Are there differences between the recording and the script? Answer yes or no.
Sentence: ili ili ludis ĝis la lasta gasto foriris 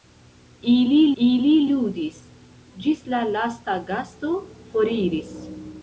no